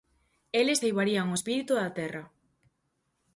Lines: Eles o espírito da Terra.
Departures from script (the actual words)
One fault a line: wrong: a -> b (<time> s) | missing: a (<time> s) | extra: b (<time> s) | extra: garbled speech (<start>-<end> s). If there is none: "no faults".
extra: ceibarían (0.8 s)